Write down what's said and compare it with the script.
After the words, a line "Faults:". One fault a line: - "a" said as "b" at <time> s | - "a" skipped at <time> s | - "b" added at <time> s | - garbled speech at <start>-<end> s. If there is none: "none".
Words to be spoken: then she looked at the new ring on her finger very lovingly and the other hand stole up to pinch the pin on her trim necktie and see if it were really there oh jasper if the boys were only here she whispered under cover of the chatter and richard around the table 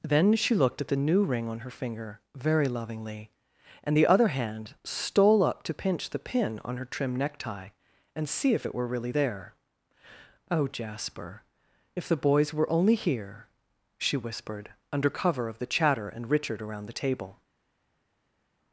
then she looked at the new ring on her finger very lovingly and the other hand stole up to pinch the pin on her trim necktie and see if it were really there oh jasper if the boys were only here she whispered under cover of the chatter and richard around the table
Faults:
none